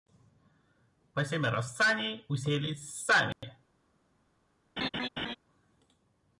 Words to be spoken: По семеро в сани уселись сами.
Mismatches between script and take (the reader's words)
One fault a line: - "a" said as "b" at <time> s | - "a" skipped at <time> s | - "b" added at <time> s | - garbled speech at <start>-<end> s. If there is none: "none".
none